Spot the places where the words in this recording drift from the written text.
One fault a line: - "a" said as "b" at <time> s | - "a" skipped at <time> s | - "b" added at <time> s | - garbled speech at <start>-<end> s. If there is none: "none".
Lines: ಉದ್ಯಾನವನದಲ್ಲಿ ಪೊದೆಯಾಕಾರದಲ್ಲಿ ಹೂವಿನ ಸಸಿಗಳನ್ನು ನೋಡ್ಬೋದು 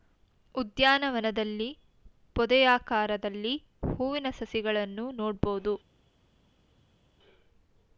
none